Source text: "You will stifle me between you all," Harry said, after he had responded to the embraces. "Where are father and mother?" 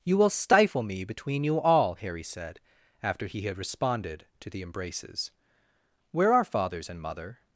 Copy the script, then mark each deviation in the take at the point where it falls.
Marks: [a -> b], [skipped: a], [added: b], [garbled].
"You will stifle me between you all," Harry said, after he had responded to the embraces. "Where are [father -> fathers] and mother?"